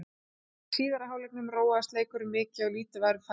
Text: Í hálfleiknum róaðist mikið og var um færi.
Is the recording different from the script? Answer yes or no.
yes